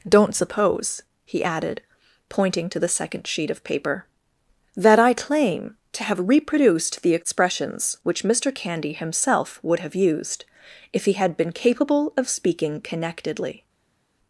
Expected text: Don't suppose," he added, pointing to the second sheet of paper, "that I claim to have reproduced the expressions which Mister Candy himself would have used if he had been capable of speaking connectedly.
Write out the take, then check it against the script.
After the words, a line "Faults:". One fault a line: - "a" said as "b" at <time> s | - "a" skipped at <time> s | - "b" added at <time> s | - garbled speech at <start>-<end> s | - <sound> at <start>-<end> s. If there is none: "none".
Don't suppose," he added, pointing to the second sheet of paper, "that I claim to have reproduced the expressions which Mister Candy himself would have used if he had been capable of speaking connectedly.
Faults:
none